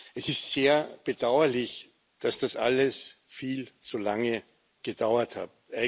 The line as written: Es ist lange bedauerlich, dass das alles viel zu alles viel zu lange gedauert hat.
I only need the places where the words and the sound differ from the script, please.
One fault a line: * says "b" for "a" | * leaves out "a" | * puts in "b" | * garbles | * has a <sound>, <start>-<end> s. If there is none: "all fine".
* says "sehr" for "lange"
* leaves out "alles viel zu"